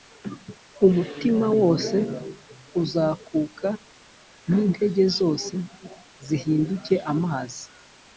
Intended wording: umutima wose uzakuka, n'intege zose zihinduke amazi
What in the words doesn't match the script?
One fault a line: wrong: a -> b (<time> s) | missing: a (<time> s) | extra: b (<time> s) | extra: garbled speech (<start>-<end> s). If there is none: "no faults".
no faults